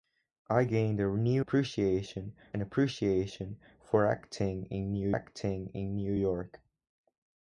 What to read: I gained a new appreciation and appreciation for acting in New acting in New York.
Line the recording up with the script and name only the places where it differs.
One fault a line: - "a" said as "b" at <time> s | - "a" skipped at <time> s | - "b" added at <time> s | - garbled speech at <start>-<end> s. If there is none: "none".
none